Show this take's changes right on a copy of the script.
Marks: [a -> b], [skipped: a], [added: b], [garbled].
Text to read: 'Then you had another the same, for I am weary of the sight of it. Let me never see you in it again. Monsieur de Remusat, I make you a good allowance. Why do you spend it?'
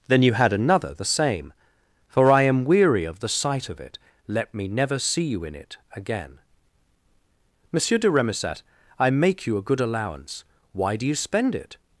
'Then you had another the same, for I am weary of the sight of it. Let me never see you in it again. Monsieur de Remusat, I make you a good allowance. Why do you spend it?'